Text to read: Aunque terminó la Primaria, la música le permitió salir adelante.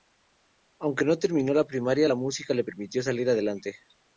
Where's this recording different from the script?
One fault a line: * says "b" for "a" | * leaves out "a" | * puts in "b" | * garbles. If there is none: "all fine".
* puts in "no"